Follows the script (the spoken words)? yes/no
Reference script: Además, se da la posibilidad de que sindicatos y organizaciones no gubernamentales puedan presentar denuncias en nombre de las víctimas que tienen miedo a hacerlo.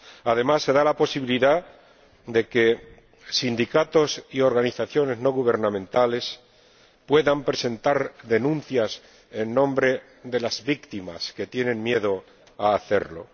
yes